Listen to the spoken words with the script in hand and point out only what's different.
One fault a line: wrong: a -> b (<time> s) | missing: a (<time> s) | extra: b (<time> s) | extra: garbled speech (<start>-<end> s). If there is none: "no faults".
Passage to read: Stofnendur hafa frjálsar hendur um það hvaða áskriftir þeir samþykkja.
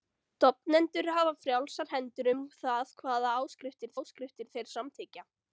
extra: áskriftir (4.0 s)